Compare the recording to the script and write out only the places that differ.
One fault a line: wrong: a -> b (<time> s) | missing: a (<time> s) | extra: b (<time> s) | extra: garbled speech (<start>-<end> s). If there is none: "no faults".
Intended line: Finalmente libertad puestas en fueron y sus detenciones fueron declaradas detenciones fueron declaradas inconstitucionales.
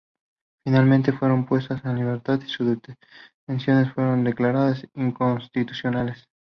wrong: libertad -> fueron (1.1 s)
wrong: fueron -> libertad (2.0 s)
missing: detenciones fueron declaradas (4.9 s)